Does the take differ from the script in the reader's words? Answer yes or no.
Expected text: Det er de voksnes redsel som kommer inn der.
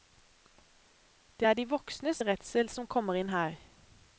yes